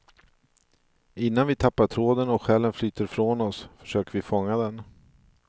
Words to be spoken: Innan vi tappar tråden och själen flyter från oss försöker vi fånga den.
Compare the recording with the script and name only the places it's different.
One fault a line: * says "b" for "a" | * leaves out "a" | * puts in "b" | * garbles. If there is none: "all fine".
all fine